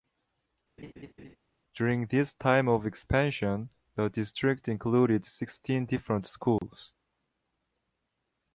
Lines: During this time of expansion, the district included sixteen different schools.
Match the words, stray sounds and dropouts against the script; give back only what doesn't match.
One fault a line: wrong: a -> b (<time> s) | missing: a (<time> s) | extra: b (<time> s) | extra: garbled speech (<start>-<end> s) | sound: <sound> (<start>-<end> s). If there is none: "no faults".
sound: laugh (0.8-1.4 s)
sound: dropout (6.6-6.6 s)